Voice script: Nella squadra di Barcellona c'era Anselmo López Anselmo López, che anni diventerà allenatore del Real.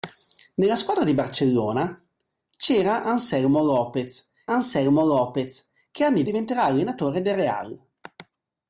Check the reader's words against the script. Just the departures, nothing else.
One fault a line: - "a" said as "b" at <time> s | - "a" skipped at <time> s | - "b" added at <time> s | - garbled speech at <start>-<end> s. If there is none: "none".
none